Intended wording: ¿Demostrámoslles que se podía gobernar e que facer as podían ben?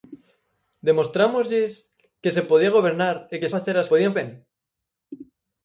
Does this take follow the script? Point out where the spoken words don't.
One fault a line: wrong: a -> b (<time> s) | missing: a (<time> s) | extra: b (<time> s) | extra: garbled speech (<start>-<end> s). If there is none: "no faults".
no faults